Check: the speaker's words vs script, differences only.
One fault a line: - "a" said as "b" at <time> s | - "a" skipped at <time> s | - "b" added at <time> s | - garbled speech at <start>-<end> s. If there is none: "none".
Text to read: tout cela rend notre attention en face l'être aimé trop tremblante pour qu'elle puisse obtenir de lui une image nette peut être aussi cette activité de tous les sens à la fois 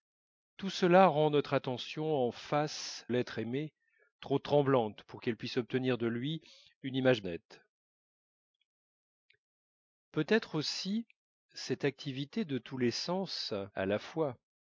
none